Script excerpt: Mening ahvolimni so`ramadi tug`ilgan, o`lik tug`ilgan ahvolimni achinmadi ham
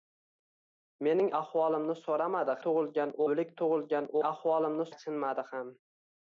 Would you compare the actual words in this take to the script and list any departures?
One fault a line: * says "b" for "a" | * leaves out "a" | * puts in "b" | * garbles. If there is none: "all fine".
all fine